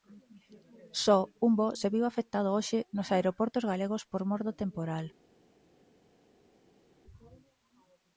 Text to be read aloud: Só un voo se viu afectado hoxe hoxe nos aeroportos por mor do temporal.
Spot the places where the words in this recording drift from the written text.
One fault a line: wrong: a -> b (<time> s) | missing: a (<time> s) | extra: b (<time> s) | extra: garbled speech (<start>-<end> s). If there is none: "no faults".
missing: hoxe (2.8 s)
extra: galegos (3.7 s)